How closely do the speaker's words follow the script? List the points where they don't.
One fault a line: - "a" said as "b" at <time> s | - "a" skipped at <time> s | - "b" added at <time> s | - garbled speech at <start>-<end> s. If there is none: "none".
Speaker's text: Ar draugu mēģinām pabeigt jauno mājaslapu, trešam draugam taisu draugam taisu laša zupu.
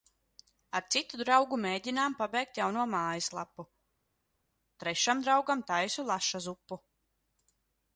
- "citu" added at 0.9 s
- "draugam taisu" skipped at 6.1 s